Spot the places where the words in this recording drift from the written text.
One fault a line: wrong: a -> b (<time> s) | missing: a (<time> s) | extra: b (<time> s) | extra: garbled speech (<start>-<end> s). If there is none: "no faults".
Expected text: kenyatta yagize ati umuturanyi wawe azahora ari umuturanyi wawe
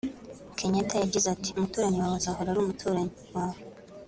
no faults